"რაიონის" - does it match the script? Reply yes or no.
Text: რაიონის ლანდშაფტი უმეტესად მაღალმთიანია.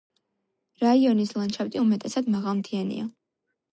yes